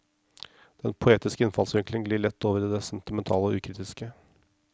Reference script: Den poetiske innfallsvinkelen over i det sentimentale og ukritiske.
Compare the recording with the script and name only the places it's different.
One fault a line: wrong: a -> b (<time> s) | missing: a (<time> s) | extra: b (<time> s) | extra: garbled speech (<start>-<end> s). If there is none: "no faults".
extra: glir lett (2.0 s)